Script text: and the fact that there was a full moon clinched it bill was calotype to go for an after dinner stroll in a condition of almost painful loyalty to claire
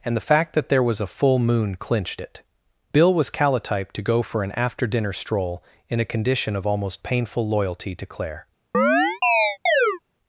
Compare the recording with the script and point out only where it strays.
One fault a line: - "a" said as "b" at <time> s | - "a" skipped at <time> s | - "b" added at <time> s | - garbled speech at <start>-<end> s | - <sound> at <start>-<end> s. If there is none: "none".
- chirp at 8.7-10.0 s